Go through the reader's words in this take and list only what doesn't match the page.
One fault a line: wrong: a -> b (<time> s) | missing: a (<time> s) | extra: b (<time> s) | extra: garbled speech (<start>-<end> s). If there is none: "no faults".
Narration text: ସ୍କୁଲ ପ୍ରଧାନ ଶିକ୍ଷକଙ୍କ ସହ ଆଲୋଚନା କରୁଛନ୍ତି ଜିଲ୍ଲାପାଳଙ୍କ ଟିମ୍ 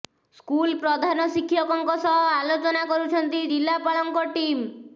no faults